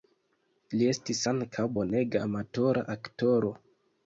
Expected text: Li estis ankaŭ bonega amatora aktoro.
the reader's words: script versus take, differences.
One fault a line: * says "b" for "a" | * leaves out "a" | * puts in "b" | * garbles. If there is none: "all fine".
all fine